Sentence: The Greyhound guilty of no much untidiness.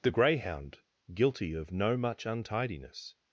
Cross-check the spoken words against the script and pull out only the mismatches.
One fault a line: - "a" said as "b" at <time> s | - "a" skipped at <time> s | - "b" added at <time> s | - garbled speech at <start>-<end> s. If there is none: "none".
none